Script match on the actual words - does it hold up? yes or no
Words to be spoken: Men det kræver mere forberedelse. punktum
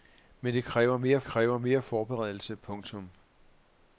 no